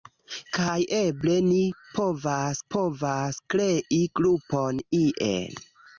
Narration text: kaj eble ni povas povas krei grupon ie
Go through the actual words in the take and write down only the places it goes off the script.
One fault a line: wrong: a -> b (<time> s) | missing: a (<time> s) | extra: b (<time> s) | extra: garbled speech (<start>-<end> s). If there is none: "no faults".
no faults